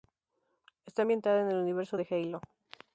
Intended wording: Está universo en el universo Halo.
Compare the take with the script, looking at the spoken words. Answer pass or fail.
fail